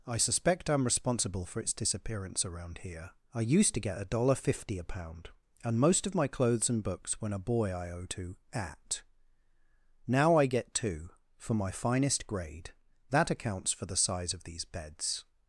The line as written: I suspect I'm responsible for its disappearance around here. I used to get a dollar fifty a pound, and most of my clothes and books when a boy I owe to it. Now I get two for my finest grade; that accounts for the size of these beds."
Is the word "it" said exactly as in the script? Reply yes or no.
no